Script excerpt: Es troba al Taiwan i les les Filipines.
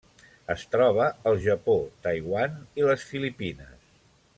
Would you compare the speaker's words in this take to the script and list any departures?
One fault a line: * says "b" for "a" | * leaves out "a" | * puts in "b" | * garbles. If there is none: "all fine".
* puts in "Japó"
* leaves out "les"